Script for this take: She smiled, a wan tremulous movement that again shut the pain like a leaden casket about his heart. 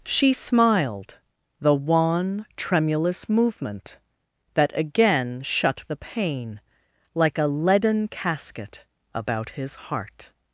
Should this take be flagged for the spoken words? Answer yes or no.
yes